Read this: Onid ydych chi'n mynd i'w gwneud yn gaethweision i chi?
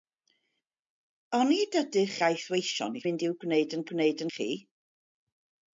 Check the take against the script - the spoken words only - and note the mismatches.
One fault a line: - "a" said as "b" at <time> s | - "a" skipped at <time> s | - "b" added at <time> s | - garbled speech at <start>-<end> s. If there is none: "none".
- "chi'n" said as "gaethweision" at 2.2 s
- "gaethweision" said as "gwneud" at 3.9 s